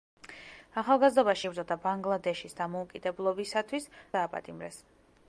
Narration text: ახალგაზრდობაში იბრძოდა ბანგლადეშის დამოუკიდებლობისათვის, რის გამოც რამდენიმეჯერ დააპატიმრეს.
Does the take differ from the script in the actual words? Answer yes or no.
yes